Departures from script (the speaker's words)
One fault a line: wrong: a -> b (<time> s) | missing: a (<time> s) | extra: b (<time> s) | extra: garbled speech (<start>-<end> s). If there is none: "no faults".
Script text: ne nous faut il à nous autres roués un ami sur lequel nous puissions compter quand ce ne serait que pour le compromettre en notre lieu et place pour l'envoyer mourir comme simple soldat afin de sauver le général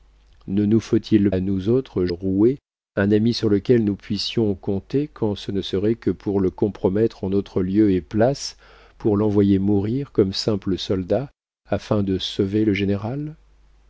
no faults